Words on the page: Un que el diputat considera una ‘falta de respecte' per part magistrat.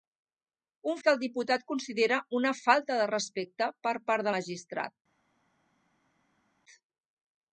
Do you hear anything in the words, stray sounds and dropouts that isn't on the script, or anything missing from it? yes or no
no